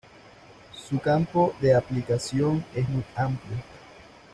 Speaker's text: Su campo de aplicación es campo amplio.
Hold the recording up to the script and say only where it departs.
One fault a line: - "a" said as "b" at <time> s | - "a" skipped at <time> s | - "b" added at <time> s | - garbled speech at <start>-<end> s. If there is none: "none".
- "campo" said as "muy" at 2.9 s